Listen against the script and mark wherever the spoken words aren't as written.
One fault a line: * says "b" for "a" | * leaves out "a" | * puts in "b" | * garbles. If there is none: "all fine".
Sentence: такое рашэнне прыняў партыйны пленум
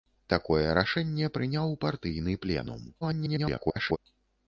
* garbles